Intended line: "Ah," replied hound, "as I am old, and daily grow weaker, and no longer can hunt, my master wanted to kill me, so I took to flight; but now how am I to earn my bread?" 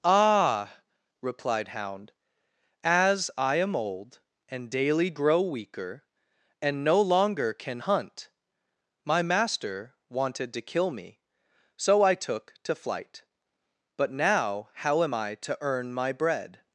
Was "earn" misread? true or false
false